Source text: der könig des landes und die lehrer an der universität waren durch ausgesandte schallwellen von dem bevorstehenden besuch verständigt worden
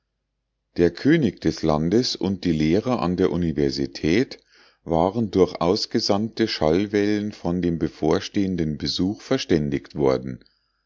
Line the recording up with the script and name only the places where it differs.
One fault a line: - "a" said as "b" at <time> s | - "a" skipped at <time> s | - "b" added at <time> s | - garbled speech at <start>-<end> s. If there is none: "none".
none